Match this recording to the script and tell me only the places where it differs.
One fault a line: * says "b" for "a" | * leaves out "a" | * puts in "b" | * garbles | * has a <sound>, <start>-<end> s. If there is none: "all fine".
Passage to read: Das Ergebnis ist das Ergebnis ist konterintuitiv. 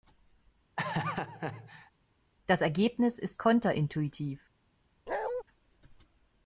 * has a laugh, 0.8-1.9 s
* leaves out "das Ergebnis ist"
* has a bark, 5.1-5.4 s